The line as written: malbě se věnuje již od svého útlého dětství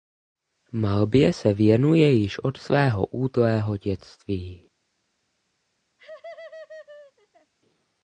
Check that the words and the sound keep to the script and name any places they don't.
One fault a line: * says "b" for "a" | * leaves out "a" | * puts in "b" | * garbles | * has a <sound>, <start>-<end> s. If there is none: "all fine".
* has a laugh, 6.0-7.5 s